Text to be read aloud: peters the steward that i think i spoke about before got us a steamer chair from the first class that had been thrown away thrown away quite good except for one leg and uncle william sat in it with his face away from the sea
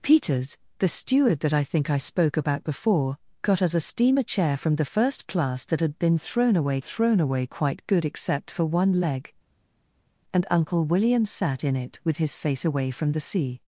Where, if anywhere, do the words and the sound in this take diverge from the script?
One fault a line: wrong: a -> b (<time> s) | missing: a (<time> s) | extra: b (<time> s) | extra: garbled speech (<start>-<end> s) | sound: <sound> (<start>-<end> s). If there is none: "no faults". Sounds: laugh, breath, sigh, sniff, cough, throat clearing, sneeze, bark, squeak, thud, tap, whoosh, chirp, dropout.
no faults